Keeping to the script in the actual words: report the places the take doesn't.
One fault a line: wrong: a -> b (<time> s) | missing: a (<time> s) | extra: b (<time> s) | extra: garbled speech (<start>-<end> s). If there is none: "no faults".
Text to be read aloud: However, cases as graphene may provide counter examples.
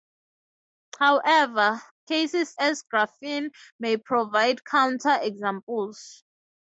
no faults